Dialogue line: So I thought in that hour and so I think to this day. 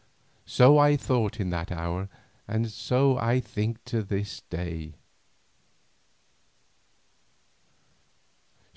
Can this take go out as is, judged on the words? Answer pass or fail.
pass